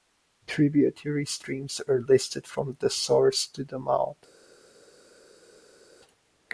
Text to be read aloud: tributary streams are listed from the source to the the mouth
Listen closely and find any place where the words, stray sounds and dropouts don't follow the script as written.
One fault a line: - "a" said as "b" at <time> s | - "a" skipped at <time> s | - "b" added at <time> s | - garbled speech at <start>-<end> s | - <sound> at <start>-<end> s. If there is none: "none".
- "the" skipped at 3.8 s